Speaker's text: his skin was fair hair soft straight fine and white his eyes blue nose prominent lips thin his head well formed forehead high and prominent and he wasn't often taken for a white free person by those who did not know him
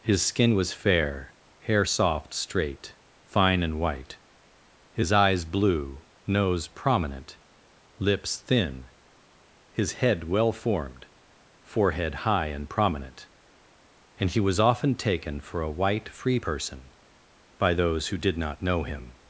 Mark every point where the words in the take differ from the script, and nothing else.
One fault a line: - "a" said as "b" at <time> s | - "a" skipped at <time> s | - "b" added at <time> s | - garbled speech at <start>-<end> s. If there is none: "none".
- "wasn't" said as "was" at 14.4 s